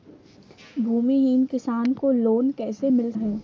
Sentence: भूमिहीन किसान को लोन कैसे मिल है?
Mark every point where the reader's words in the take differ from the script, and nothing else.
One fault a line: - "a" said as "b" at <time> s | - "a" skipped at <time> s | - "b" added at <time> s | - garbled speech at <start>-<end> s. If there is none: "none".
none